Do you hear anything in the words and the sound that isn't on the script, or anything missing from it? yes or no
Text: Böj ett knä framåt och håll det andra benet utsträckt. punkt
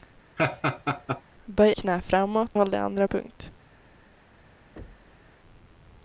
yes